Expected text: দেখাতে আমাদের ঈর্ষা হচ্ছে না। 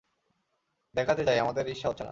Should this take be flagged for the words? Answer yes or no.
yes